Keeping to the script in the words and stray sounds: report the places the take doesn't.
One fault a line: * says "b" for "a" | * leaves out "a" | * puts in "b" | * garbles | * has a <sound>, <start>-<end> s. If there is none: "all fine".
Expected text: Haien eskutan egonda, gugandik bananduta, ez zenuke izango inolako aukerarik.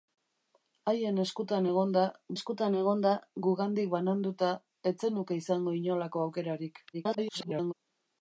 * puts in "eskutan egonda"
* garbles